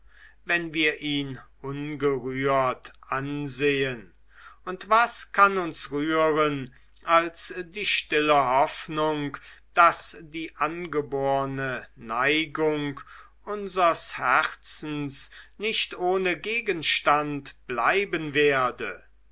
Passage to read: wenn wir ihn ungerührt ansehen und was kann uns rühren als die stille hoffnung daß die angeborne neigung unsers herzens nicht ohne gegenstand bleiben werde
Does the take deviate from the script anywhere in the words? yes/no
no